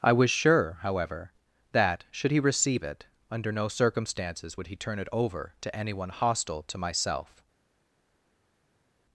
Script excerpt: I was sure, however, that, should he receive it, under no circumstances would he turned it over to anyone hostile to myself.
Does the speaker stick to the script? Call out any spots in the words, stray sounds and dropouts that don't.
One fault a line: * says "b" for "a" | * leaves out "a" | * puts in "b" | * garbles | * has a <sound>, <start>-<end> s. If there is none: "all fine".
* says "turn" for "turned"